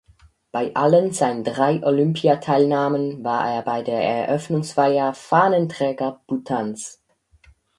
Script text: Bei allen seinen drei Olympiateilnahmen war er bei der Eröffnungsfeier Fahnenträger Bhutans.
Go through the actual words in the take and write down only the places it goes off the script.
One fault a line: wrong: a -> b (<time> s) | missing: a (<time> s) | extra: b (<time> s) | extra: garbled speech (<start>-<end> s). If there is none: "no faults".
no faults